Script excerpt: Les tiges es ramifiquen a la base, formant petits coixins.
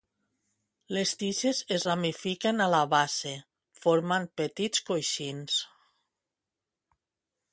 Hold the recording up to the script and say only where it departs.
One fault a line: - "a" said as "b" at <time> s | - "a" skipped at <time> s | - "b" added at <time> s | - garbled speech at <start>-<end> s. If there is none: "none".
none